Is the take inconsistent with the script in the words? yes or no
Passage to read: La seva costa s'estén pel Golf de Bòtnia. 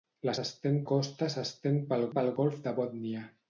yes